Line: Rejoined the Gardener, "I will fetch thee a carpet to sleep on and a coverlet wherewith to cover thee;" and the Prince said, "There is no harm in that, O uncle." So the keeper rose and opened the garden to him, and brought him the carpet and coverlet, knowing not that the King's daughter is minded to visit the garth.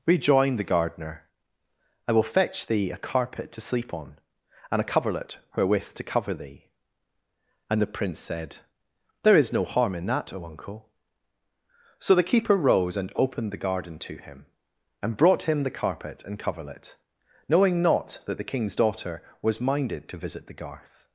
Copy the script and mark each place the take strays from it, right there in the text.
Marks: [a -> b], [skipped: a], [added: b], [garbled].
Rejoined the Gardener, "I will fetch thee a carpet to sleep on and a coverlet wherewith to cover thee;" and the Prince said, "There is no harm in that, O uncle." So the keeper rose and opened the garden to him, and brought him the carpet and coverlet, knowing not that the King's daughter [is -> was] minded to visit the garth.